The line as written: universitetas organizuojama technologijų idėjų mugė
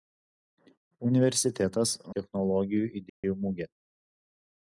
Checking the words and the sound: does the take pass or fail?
fail